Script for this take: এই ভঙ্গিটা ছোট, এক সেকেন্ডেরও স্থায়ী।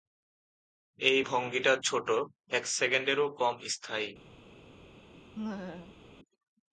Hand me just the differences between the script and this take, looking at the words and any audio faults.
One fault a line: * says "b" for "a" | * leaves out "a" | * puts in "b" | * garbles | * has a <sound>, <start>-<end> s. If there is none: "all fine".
* puts in "কম"
* has a laugh, 5.4-6.0 s